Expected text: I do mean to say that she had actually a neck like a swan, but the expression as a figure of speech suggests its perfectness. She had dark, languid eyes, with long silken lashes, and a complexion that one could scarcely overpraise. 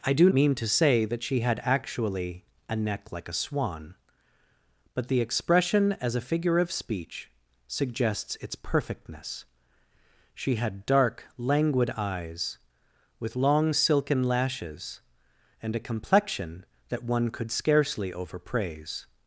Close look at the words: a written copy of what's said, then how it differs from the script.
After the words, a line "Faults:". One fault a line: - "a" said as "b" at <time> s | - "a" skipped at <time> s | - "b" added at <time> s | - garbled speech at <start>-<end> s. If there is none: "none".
I do mean to say that she had actually a neck like a swan, but the expression as a figure of speech suggests its perfectness. She had dark, languid eyes, with long silken lashes, and a complexion that one could scarcely overpraise.
Faults:
none